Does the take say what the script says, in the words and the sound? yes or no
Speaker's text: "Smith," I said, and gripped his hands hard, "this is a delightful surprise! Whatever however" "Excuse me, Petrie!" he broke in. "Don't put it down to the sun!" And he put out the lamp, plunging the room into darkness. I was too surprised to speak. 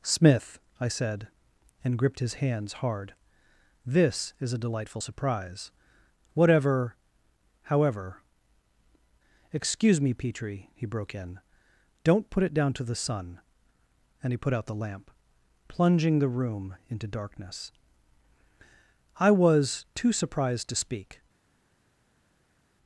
yes